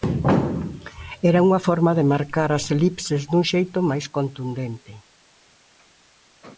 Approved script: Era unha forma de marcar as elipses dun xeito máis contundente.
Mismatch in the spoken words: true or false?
false